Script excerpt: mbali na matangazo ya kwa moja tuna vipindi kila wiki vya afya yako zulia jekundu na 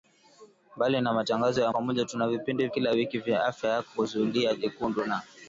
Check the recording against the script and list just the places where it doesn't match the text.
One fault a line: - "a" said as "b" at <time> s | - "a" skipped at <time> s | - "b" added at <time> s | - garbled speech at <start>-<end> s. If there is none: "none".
none